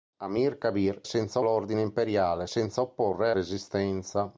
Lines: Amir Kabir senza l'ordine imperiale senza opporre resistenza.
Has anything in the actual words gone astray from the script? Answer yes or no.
no